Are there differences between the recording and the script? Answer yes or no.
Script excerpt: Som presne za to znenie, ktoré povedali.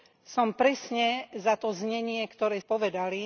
no